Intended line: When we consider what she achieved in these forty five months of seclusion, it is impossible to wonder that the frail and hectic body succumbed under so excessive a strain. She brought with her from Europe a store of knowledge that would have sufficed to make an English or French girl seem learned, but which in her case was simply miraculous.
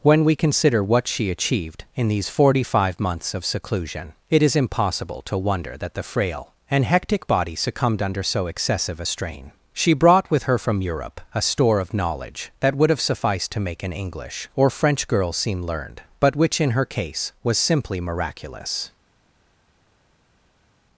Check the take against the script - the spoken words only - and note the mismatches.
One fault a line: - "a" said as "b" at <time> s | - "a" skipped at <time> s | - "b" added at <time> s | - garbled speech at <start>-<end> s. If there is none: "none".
none